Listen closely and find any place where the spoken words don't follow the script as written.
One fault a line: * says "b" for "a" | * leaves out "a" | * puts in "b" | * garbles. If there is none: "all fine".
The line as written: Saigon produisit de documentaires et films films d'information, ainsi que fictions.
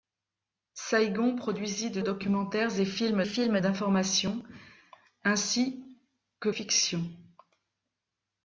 all fine